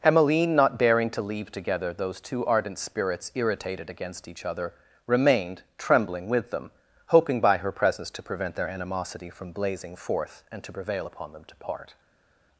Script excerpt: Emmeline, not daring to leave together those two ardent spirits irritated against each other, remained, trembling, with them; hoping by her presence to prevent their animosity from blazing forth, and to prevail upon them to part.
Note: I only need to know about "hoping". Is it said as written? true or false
true